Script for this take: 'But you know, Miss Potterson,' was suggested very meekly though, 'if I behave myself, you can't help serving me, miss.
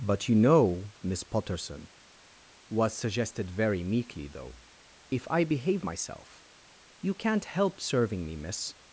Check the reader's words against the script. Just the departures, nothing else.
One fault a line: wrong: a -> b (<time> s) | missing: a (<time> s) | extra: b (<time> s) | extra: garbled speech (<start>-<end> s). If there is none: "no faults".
no faults